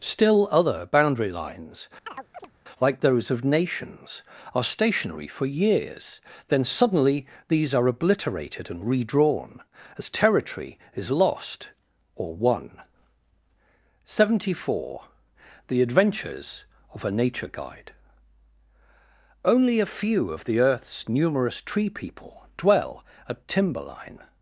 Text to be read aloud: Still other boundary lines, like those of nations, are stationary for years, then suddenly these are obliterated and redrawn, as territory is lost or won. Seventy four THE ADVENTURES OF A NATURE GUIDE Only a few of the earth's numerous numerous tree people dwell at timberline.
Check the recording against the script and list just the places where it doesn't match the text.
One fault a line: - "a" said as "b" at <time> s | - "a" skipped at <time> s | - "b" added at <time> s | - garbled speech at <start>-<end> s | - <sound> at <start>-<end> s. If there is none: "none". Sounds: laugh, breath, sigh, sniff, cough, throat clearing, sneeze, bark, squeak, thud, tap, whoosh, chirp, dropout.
- chirp at 2.1-2.5 s
- "numerous" skipped at 21.6 s